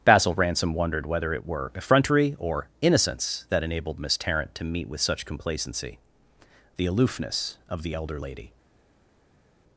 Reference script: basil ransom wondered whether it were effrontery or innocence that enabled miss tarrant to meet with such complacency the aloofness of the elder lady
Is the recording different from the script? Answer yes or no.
no